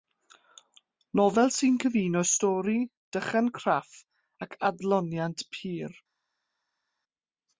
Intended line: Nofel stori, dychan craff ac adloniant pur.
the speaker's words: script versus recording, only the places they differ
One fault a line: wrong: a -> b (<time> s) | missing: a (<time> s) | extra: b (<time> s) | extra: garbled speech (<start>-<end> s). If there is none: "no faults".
extra: sy'n cyfuno (1.6 s)